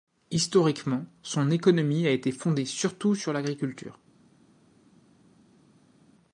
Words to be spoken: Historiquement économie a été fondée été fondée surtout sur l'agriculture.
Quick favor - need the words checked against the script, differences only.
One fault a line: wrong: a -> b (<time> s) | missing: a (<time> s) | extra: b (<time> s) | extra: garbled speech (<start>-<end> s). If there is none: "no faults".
extra: son (1.2 s)
missing: été fondée (2.6 s)